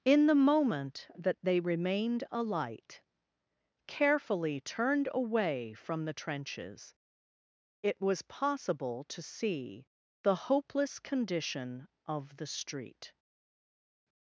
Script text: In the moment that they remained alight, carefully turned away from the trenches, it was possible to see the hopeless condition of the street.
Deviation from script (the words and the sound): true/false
false